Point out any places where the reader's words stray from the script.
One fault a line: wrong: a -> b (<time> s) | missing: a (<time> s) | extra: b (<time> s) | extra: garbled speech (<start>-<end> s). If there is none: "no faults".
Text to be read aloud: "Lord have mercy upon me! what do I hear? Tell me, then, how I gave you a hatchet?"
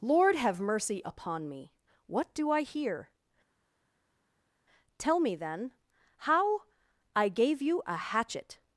no faults